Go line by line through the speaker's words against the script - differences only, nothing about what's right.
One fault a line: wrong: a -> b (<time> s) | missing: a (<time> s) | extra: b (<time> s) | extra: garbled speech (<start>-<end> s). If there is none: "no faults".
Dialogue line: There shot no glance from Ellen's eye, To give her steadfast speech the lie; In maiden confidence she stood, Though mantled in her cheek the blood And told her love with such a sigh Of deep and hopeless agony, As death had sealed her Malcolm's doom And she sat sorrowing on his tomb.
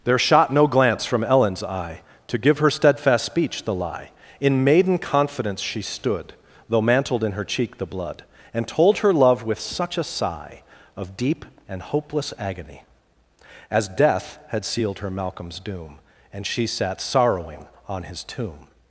no faults